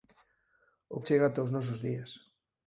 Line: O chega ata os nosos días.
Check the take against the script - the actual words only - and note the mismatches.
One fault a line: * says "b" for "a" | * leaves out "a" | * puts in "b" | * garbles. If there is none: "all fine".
all fine